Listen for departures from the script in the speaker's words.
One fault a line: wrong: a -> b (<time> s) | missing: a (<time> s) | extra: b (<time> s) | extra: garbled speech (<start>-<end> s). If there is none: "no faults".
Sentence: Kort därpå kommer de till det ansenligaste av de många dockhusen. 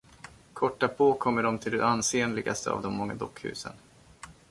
no faults